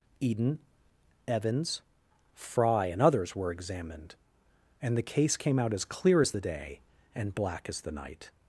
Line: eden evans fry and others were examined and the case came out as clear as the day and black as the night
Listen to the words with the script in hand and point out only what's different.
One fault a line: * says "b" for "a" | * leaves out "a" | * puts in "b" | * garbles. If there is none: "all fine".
all fine